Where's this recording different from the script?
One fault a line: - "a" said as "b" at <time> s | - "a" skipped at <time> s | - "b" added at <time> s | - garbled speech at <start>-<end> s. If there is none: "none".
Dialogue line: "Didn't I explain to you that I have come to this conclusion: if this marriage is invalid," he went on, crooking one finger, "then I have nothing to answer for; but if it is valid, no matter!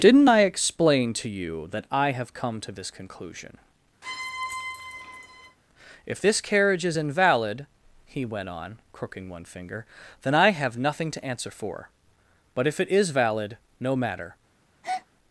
- "marriage" said as "carriage" at 6.4 s